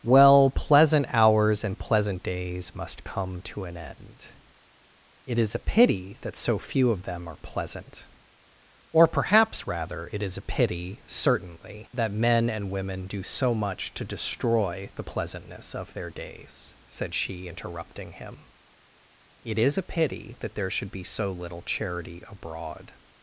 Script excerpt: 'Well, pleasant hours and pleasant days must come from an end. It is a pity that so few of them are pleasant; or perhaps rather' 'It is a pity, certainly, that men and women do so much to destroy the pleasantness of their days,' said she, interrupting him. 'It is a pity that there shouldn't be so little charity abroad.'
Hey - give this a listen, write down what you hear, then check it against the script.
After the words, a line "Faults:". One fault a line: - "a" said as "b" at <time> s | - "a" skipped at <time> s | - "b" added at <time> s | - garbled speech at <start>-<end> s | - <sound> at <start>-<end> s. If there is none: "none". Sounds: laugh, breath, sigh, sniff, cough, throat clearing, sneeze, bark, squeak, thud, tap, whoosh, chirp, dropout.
'Well, pleasant hours and pleasant days must come to an end. It is a pity that so few of them are pleasant; or perhaps rather' 'It is a pity, certainly, that men and women do so much to destroy the pleasantness of their days,' said she, interrupting him. 'It is a pity that there should be so little charity abroad.'
Faults:
- "from" said as "to" at 3.4 s
- "shouldn't" said as "should" at 20.7 s